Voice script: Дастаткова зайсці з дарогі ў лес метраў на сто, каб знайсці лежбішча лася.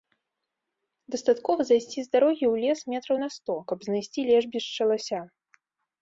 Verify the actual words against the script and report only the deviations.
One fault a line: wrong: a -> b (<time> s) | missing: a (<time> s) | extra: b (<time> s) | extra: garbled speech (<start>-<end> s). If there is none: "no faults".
no faults